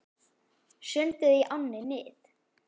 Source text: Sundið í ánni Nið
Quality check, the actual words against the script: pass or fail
pass